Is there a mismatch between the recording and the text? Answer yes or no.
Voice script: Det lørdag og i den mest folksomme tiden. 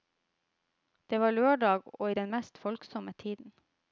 yes